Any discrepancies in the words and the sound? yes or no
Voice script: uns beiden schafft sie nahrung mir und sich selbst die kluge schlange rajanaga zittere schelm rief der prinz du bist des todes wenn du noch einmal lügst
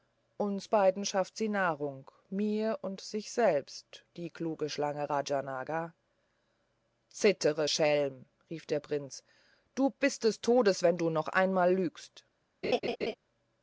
yes